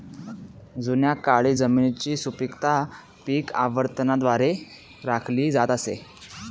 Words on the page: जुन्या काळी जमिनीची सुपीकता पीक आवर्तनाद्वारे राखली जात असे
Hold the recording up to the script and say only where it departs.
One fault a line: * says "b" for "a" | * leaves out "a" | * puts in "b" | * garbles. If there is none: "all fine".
all fine